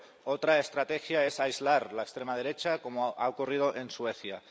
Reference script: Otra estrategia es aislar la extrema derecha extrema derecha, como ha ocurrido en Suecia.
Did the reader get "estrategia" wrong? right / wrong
right